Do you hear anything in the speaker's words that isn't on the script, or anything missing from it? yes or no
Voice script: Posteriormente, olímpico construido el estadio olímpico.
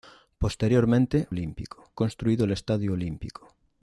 no